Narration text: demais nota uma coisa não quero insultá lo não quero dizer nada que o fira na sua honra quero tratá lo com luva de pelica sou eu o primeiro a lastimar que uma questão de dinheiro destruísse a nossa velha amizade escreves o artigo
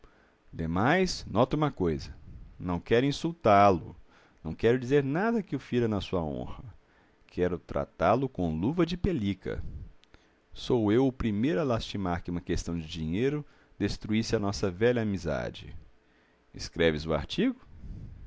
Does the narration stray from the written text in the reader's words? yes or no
no